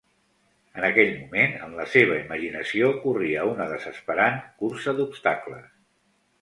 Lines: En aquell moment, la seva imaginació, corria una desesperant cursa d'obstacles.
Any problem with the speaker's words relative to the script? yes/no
yes